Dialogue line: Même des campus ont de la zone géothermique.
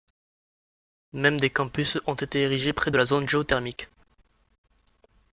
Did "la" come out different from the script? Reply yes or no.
no